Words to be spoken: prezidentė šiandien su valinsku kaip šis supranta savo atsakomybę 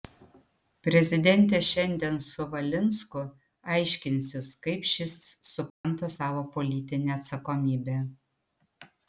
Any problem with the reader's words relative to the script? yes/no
yes